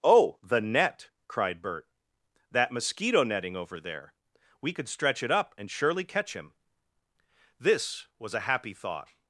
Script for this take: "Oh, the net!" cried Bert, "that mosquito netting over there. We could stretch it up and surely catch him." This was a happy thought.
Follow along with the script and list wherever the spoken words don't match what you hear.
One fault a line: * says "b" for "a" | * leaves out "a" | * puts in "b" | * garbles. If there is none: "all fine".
all fine